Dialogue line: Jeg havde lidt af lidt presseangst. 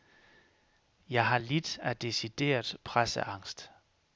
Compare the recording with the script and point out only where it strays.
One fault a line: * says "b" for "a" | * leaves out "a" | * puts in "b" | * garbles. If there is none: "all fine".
* says "har" for "havde"
* says "decideret" for "lidt"